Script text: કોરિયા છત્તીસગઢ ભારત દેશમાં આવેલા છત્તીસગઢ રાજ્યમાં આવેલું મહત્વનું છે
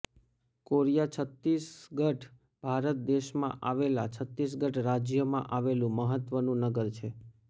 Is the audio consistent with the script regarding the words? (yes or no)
no